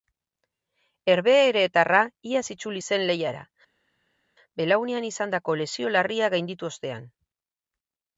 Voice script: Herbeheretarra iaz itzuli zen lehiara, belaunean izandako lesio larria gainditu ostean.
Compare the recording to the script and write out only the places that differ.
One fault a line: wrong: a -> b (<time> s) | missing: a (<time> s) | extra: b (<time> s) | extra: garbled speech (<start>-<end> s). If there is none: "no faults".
no faults